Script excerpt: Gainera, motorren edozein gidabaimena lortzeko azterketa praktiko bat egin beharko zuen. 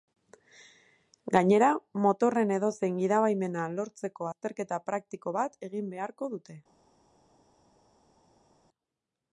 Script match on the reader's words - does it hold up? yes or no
no